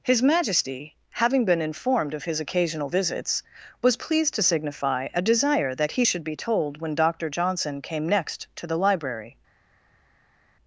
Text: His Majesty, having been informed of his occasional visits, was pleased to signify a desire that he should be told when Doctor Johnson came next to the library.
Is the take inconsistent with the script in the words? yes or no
no